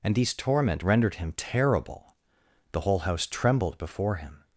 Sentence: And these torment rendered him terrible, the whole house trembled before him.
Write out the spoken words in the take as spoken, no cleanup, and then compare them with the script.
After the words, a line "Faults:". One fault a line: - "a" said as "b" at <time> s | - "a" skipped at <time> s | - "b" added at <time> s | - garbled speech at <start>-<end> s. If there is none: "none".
And these torment rendered him terrible, the whole house trembled before him.
Faults:
none